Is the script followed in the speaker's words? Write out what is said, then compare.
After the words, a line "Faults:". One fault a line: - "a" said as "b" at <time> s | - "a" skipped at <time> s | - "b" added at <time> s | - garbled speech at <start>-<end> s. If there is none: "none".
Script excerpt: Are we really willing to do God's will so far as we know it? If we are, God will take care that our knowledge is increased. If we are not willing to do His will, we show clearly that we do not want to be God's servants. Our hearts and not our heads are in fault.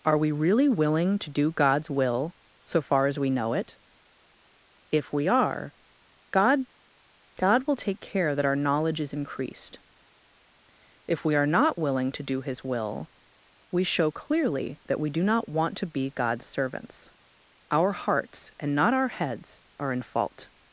Are we really willing to do God's will so far as we know it? If we are, God God will take care that our knowledge is increased. If we are not willing to do His will, we show clearly that we do not want to be God's servants. Our hearts and not our heads are in fault.
Faults:
- "God" added at 7.4 s